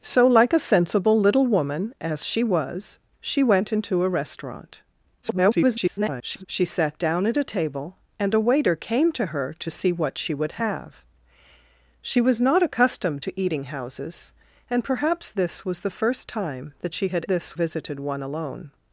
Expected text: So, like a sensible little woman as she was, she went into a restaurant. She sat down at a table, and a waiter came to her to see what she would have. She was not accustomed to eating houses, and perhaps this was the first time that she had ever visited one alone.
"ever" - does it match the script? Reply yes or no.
no